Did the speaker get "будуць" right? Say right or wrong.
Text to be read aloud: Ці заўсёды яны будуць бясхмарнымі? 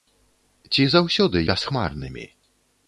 wrong